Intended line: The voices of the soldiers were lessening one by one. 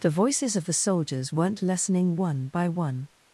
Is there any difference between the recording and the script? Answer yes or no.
yes